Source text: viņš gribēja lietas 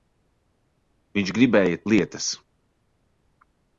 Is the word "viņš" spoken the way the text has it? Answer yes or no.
yes